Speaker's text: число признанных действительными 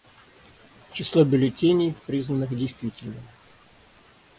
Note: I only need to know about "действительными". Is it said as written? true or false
true